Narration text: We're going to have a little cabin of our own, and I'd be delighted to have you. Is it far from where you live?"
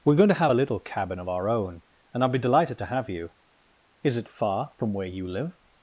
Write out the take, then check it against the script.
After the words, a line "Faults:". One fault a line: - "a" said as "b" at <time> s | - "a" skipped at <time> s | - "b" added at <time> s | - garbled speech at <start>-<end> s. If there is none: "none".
We're going to have a little cabin of our own, and I'd be delighted to have you. Is it far from where you live?"
Faults:
none